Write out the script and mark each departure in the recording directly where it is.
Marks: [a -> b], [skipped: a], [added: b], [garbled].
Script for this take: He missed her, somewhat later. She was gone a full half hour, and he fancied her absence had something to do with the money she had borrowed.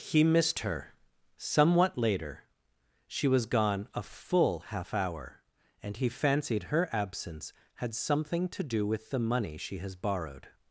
He missed her, somewhat later. She was gone a full half hour, and he fancied her absence had something to do with the money she [had -> has] borrowed.